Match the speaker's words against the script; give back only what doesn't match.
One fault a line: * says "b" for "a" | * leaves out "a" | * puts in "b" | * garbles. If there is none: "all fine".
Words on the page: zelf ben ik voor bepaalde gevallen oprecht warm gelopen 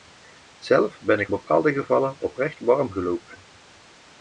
* leaves out "voor"